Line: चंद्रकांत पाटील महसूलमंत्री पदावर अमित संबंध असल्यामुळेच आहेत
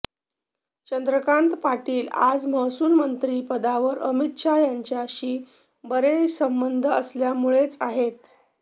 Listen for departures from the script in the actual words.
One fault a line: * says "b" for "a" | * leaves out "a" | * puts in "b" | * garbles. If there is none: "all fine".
* puts in "आज"
* puts in "शहा यांच्याशी बरे"